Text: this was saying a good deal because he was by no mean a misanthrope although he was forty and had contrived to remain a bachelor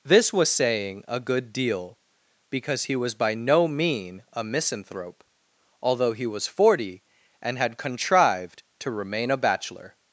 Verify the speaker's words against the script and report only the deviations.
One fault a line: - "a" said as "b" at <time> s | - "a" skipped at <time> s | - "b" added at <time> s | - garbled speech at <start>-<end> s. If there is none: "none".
none